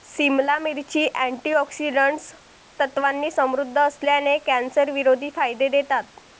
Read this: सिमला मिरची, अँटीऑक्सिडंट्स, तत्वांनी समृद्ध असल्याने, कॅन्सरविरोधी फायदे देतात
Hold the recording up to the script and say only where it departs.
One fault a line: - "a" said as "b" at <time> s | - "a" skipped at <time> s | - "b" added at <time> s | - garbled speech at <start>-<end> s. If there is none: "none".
none